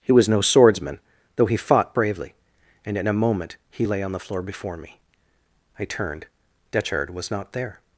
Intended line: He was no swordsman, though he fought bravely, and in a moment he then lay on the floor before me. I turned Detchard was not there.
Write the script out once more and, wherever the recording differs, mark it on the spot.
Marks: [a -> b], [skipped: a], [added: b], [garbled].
He was no swordsman, though he fought bravely, and in a moment he [skipped: then] lay on the floor before me. I turned Detchard was not there.